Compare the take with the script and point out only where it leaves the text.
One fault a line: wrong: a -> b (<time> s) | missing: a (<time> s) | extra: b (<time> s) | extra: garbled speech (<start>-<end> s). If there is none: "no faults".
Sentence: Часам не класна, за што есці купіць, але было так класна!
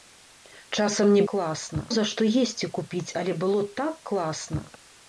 no faults